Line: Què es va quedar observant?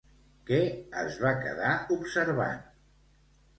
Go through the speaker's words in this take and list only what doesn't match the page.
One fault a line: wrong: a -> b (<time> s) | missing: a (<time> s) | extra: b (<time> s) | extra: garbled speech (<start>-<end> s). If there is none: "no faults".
no faults